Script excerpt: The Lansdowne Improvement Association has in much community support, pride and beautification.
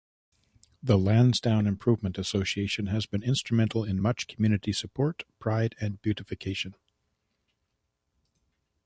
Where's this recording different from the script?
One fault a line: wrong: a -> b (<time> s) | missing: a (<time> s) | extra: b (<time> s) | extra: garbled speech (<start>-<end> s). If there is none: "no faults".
extra: been instrumental (3.0 s)